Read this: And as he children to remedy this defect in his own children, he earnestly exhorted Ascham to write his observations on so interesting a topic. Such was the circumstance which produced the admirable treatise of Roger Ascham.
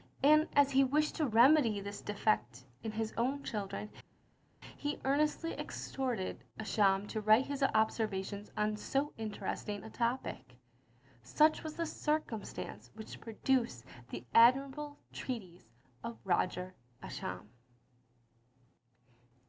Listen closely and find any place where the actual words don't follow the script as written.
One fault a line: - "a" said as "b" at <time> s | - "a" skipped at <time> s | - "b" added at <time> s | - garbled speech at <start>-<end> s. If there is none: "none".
- "children" said as "wished" at 0.8 s